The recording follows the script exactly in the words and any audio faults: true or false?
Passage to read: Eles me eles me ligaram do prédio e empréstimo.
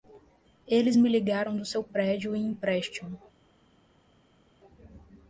false